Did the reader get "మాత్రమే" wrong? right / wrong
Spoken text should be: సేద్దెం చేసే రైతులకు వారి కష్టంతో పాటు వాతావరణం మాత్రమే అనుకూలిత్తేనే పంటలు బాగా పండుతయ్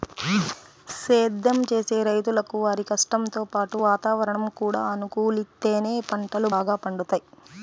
wrong